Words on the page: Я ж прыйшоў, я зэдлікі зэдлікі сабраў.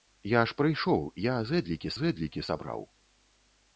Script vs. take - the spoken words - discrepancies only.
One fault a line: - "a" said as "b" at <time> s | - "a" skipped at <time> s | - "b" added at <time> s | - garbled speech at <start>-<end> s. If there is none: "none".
none